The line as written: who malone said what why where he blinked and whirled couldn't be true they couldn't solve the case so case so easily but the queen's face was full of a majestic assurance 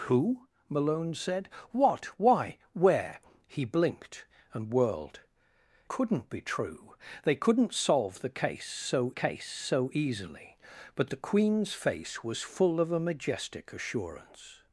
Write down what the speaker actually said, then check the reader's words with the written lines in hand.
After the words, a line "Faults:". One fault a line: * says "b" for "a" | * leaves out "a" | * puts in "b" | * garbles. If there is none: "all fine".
who malone said what why where he blinked and whirled couldn't be true they couldn't solve the case so case so easily but the queen's face was full of a majestic assurance
Faults:
all fine